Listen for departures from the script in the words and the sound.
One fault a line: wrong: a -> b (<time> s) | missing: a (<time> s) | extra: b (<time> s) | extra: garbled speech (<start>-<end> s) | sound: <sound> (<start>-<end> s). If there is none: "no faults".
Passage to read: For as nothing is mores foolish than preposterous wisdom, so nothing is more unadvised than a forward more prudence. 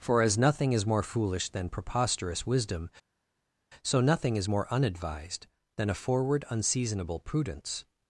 wrong: mores -> more (0.8 s)
wrong: more -> unseasonable (6.5 s)